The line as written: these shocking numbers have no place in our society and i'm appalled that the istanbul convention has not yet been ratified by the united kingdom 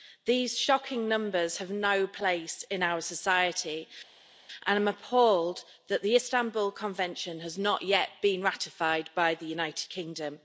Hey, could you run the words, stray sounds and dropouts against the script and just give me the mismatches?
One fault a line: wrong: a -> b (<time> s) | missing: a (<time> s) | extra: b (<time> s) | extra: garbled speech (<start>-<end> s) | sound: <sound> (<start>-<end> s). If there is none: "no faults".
no faults